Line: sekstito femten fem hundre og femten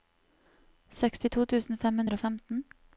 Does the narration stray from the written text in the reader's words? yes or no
yes